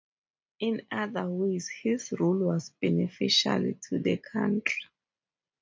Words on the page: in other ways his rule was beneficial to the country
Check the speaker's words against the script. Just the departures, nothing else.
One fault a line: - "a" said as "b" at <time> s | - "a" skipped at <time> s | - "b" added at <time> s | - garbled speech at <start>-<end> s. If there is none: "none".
none